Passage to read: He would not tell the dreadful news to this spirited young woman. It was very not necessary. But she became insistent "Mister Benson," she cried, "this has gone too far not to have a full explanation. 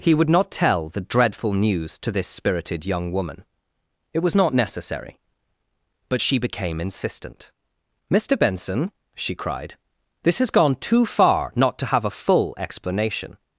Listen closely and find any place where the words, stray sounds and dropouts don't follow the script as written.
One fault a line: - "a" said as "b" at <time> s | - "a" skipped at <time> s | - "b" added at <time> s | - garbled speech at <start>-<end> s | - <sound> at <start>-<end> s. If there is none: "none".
- "very" skipped at 4.3 s